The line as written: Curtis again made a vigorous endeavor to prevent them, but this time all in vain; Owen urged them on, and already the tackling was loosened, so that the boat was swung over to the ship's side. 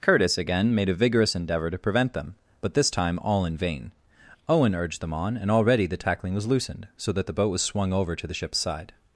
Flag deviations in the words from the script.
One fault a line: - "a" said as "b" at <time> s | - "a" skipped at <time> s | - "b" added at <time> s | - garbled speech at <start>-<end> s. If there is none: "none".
none